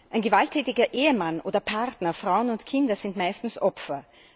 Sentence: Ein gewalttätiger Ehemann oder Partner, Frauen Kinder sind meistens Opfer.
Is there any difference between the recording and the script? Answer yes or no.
yes